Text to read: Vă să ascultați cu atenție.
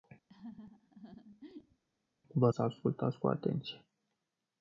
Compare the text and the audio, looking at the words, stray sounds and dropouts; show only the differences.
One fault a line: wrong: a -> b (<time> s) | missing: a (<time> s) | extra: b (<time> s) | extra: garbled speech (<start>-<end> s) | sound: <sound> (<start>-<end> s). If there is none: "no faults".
sound: laugh (0.3-1.8 s)